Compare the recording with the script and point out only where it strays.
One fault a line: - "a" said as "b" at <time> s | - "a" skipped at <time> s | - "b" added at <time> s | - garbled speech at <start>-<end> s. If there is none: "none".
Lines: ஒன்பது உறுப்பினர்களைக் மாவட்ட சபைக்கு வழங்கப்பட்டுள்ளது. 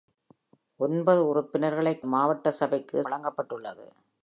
none